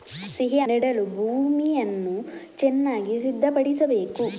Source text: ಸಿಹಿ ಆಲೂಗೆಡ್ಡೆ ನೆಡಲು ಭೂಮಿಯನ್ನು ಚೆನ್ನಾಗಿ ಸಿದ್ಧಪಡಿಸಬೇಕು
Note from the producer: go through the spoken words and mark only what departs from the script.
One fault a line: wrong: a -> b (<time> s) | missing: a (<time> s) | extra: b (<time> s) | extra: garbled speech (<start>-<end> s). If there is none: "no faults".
missing: ಆಲೂಗೆಡ್ಡೆ (0.6 s)